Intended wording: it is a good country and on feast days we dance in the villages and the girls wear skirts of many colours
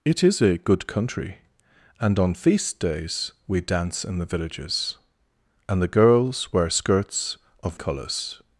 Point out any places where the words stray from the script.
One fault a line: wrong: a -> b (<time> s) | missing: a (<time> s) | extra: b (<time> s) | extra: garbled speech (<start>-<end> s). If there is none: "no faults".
missing: many (7.8 s)